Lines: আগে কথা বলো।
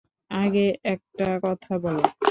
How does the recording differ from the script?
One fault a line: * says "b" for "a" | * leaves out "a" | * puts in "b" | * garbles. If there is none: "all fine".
* puts in "একটা"